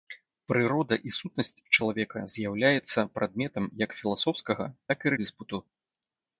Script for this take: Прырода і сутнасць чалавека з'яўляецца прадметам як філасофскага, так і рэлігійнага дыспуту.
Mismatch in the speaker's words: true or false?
true